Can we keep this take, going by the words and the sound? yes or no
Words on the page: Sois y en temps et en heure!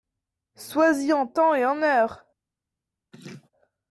no